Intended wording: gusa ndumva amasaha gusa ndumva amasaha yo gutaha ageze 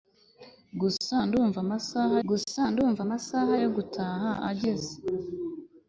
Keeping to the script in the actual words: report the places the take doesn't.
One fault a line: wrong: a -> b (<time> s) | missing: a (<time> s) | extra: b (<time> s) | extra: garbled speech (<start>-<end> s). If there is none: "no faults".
no faults